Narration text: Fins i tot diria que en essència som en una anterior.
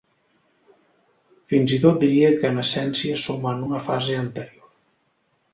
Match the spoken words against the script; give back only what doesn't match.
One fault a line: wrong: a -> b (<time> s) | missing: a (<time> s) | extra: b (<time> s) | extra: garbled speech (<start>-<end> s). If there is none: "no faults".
extra: fase (3.9 s)